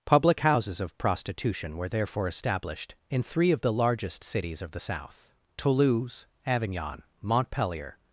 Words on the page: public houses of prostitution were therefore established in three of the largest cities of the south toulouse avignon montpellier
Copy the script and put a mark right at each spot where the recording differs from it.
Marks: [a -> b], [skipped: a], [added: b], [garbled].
public houses of prostitution were therefore established in three of the largest cities of the south toulouse avignon montpellier